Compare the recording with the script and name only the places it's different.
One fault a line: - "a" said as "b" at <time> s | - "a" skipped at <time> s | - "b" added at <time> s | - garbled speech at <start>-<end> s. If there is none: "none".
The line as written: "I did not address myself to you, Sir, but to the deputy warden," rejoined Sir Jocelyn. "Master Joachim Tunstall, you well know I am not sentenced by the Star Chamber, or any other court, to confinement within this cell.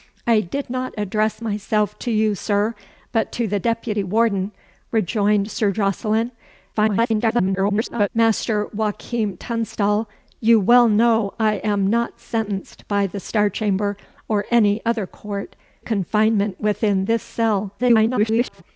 - garbled speech at 6.7-8.1 s
- "to" skipped at 15.6 s
- garbled speech at 17.8-18.6 s